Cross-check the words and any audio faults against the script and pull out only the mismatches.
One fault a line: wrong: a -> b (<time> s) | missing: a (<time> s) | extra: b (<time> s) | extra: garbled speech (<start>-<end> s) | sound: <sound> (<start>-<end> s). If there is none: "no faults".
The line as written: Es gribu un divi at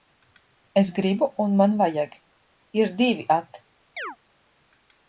extra: man vajag ir (1.6 s)
sound: chirp (4.0-4.2 s)